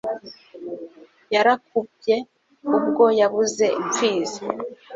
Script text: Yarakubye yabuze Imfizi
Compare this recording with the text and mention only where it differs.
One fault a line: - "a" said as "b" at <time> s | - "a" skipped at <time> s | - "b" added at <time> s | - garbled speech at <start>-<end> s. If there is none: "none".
- "ubwo" added at 2.8 s